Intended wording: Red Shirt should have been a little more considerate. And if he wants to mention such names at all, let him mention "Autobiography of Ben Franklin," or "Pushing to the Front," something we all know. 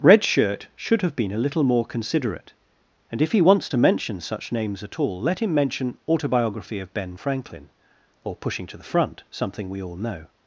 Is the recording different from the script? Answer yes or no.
no